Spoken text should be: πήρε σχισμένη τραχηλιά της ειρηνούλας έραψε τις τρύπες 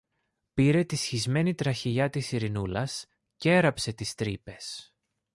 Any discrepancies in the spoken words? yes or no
yes